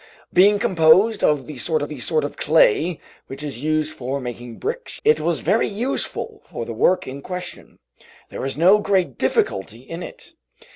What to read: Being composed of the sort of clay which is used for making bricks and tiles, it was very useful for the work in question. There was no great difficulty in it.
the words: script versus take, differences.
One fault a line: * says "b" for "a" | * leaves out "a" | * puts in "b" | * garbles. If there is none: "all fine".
* puts in "the sort"
* leaves out "and tiles"